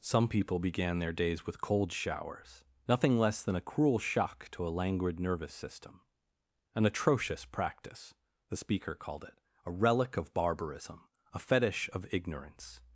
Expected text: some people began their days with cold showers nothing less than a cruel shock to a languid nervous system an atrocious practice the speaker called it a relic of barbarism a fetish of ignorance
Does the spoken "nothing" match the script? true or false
true